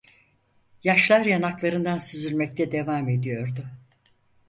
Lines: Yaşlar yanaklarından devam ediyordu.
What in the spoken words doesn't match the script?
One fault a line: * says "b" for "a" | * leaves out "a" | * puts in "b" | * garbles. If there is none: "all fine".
* puts in "süzülmekte"